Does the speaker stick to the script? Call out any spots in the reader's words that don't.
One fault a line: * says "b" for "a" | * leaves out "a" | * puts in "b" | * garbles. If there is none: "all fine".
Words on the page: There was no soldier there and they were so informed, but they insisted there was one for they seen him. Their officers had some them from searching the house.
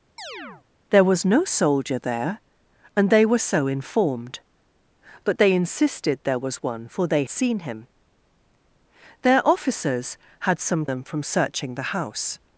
all fine